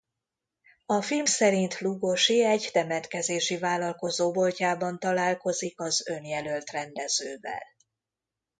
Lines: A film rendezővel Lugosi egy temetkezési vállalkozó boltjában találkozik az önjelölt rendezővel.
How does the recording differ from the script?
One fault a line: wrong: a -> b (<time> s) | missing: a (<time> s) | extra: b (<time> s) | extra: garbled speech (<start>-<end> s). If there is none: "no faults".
wrong: rendezővel -> szerint (1.2 s)